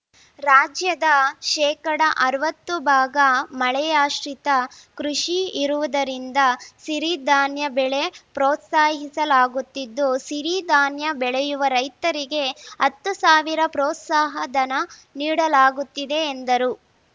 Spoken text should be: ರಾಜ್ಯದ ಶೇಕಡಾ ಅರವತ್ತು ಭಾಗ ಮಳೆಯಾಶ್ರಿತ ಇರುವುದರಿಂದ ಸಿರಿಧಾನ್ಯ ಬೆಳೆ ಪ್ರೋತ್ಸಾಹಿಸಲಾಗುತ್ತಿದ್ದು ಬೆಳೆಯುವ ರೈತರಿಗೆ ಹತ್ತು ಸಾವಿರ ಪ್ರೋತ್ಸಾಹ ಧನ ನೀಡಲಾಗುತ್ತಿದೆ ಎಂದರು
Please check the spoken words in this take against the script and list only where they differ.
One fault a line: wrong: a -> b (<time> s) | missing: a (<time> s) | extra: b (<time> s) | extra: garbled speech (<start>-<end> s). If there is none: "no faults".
extra: ಕೃಷಿ (5.0 s)
extra: ಸಿರಿಧಾನ್ಯ (10.3 s)